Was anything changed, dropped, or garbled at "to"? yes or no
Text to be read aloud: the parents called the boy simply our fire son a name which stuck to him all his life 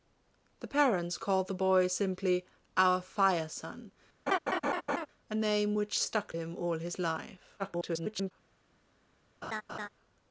yes